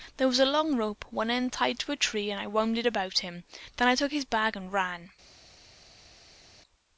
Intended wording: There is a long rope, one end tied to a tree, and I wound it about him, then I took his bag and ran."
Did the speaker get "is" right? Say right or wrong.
wrong